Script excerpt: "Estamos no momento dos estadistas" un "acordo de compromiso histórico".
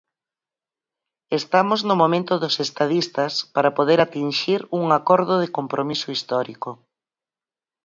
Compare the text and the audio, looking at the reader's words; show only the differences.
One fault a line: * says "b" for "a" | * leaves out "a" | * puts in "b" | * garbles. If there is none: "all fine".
* puts in "para poder atinxir"